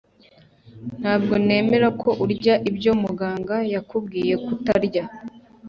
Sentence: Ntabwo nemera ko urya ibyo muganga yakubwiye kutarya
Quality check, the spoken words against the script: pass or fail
pass